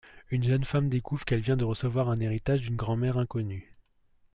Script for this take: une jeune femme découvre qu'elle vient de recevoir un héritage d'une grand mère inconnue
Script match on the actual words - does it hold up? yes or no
yes